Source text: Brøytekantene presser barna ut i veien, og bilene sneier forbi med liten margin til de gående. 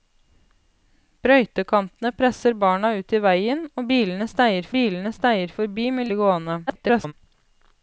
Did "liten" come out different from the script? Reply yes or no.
yes